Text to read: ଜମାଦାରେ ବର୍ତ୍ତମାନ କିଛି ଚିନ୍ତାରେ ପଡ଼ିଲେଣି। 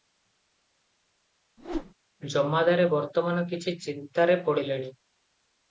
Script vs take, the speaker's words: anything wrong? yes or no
no